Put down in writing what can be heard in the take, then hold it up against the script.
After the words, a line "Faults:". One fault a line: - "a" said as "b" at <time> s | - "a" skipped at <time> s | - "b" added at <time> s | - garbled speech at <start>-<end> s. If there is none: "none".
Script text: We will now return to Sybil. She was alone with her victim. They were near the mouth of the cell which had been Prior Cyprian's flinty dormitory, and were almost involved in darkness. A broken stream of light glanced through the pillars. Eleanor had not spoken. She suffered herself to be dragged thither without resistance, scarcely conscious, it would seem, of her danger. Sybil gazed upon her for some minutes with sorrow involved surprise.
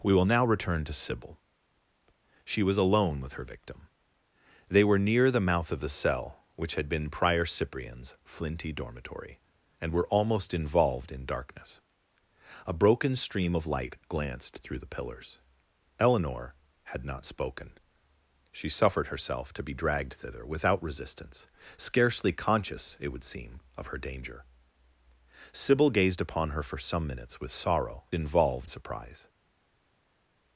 We will now return to Sybil. She was alone with her victim. They were near the mouth of the cell which had been Prior Cyprian's flinty dormitory, and were almost involved in darkness. A broken stream of light glanced through the pillars. Eleanor had not spoken. She suffered herself to be dragged thither without resistance, scarcely conscious, it would seem, of her danger. Sybil gazed upon her for some minutes with sorrow involved surprise.
Faults:
none